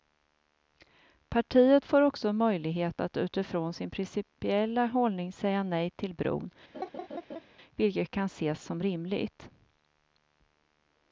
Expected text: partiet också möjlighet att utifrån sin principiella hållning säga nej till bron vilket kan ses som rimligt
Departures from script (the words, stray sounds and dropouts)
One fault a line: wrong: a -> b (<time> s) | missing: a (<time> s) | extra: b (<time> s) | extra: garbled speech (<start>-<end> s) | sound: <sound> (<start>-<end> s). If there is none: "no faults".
extra: får (1.9 s)
sound: laugh (6.7-7.4 s)